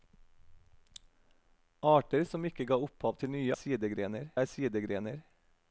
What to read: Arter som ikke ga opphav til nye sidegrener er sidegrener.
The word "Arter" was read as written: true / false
true